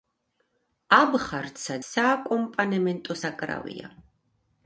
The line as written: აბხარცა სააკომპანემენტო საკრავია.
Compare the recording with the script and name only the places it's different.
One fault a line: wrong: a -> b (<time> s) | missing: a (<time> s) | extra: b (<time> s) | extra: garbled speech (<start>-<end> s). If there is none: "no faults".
no faults